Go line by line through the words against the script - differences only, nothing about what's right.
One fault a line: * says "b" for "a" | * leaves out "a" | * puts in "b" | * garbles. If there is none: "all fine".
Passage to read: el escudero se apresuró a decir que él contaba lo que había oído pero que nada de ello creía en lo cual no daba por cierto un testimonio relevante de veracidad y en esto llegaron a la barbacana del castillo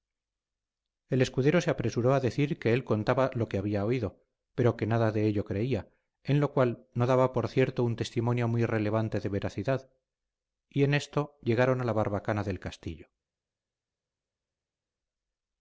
* puts in "muy"